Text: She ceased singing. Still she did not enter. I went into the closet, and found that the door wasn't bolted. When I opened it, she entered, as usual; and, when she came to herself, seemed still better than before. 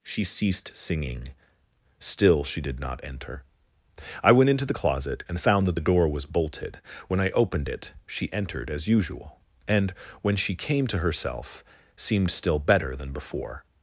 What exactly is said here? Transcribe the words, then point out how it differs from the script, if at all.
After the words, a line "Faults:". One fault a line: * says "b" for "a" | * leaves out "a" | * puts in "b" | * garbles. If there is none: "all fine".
She ceased singing. Still she did not enter. I went into the closet, and found that the door was bolted. When I opened it, she entered, as usual; and, when she came to herself, seemed still better than before.
Faults:
* says "was" for "wasn't"